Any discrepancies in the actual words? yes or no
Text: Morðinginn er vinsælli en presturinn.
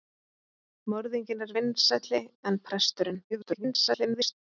yes